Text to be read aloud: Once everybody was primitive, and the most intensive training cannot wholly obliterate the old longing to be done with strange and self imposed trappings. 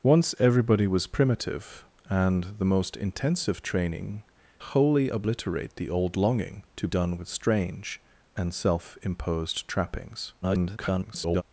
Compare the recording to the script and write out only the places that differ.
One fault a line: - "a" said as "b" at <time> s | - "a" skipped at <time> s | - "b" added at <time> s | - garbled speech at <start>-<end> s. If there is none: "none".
- "cannot" skipped at 4.2 s
- "be" skipped at 6.9 s
- garbled speech at 10.4-11.4 s